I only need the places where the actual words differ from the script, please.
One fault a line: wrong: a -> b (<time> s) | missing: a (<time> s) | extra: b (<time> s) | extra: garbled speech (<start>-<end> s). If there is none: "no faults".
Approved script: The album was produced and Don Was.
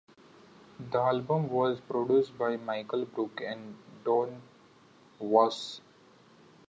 extra: by Michael Brook (2.4 s)